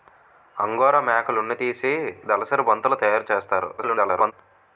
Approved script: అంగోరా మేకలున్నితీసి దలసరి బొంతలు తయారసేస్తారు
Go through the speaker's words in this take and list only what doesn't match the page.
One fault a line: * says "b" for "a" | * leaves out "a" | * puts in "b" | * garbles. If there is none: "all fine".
* garbles